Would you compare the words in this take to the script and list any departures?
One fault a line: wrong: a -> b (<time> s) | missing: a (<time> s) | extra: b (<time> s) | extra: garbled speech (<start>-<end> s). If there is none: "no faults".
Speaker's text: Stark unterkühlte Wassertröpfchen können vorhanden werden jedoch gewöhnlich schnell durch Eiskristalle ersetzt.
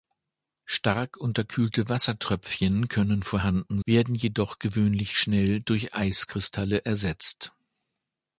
no faults